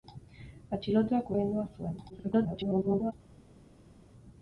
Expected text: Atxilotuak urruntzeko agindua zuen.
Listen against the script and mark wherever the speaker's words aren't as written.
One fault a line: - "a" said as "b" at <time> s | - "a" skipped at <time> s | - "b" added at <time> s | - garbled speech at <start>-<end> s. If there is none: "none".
- "urruntzeko" skipped at 1.3 s
- garbled speech at 2.1-3.1 s